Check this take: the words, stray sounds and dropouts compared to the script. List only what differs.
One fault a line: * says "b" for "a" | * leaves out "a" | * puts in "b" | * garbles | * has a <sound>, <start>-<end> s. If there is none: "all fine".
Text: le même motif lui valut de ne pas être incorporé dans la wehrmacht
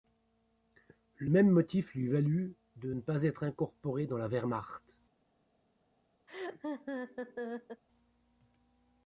* has a laugh, 6.3-7.8 s